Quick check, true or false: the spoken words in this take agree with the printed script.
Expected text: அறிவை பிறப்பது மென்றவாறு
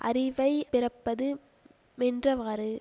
true